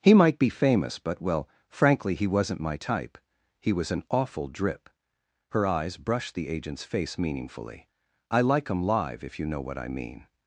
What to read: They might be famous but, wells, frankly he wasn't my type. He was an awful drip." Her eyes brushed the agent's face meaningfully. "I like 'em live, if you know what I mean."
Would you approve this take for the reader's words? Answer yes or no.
no